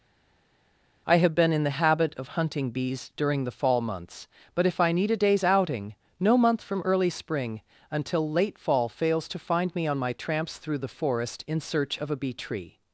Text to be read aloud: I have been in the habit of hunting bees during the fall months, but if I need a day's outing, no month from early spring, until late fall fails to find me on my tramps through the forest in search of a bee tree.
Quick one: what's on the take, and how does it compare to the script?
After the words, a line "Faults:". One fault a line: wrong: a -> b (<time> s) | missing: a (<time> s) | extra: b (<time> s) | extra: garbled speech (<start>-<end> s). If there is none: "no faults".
I have been in the habit of hunting bees during the fall months, but if I need a day's outing, no month from early spring, until late fall fails to find me on my tramps through the forest in search of a bee tree.
Faults:
no faults